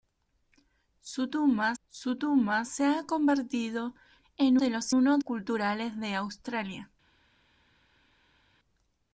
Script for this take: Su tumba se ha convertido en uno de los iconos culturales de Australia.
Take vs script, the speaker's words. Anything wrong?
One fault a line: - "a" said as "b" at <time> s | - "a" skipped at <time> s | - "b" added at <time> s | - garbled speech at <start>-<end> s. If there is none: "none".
- "su tumba" added at 1.8 s
- "uno" skipped at 4.6 s
- "iconos" said as "uno" at 4.9 s